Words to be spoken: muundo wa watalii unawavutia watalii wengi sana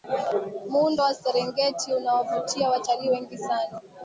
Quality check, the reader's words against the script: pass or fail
fail